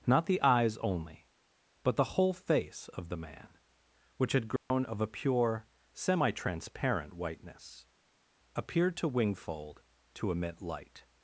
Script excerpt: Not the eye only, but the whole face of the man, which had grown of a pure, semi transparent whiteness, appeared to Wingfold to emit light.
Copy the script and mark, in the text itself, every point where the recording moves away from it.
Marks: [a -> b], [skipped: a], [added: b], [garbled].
Not the [eye -> eyes] only, but the whole face of the man, which had grown of a pure, semi transparent whiteness, appeared to Wingfold to emit light.